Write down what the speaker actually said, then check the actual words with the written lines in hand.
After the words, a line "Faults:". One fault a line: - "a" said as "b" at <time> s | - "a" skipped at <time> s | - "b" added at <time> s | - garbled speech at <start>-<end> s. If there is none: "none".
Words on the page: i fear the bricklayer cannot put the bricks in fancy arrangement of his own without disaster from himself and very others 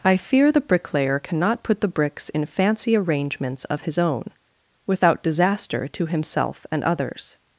i fear the bricklayer cannot put the bricks in fancy arrangements of his own without disaster to himself and others
Faults:
- "arrangement" said as "arrangements" at 3.0 s
- "from" said as "to" at 5.9 s
- "very" skipped at 6.8 s